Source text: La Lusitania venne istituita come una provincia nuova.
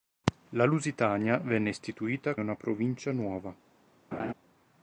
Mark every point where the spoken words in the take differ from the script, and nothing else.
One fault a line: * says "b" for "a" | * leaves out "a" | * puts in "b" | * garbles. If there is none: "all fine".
* leaves out "come"